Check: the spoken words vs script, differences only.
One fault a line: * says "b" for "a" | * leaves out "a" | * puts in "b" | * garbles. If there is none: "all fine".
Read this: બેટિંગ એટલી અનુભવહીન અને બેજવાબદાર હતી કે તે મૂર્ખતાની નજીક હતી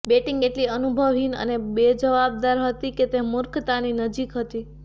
all fine